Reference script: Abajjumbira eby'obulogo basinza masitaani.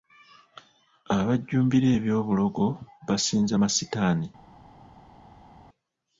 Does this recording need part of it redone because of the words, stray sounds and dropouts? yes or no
no